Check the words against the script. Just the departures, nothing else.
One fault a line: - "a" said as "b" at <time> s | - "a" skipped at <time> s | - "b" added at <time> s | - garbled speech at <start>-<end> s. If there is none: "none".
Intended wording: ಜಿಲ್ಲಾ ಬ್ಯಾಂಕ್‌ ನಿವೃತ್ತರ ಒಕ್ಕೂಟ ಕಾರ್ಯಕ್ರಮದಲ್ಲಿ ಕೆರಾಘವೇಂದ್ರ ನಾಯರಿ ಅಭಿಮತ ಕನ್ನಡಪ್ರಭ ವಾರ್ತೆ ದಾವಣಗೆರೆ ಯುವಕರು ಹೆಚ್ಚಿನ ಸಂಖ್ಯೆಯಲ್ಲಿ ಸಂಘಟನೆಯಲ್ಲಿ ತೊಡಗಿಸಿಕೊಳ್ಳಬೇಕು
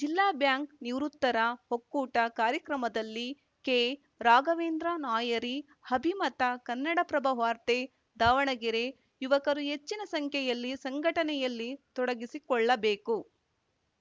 none